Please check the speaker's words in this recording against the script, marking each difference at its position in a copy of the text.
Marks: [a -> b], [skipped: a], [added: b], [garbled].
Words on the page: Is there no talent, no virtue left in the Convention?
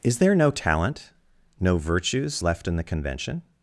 Is there no talent, no [virtue -> virtues] left in the Convention?